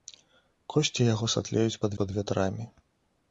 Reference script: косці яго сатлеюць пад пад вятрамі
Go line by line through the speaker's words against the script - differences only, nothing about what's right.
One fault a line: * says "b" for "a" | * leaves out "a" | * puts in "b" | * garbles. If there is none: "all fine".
all fine